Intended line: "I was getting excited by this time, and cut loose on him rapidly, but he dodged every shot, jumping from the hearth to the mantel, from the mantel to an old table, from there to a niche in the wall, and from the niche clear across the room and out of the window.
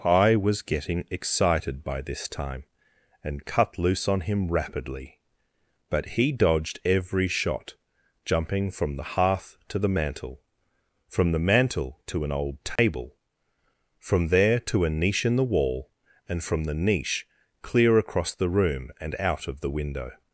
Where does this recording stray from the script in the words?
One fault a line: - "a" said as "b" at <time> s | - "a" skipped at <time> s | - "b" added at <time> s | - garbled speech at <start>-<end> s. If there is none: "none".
none